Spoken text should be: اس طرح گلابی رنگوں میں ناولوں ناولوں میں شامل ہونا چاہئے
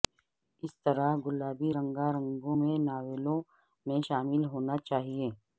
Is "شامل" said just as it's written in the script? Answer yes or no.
yes